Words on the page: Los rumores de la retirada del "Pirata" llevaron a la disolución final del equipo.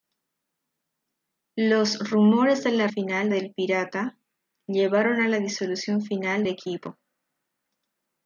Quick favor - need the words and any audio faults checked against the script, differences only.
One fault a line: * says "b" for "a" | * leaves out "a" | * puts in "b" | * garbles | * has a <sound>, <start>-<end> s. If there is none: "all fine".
* says "final" for "retirada"
* leaves out "del"